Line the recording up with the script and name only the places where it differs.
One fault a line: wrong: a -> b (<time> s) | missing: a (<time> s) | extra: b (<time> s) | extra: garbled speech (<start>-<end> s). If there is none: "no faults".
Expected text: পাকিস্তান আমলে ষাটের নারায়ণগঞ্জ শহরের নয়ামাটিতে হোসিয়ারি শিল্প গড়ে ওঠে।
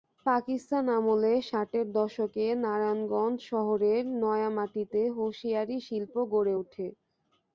extra: দশকে (1.9 s)